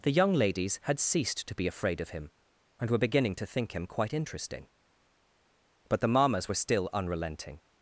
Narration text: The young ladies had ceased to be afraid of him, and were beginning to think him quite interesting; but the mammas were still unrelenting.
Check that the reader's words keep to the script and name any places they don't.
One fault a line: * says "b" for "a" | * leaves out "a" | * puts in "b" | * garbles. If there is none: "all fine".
all fine